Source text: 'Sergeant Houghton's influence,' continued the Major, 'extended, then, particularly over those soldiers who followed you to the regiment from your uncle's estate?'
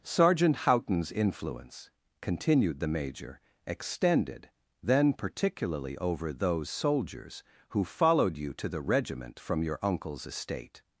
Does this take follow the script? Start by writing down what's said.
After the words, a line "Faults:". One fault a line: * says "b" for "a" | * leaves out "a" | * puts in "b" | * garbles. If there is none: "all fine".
'Sergeant Houghton's influence,' continued the Major, 'extended, then, particularly over those soldiers who followed you to the regiment from your uncle's estate?'
Faults:
all fine